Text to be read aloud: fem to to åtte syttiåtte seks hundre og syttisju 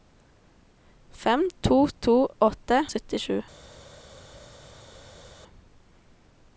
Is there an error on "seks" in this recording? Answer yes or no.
yes